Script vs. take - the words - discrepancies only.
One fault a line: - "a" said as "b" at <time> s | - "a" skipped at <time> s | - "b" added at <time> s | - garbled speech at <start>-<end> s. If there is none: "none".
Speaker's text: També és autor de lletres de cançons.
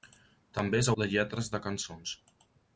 - "autor" skipped at 0.9 s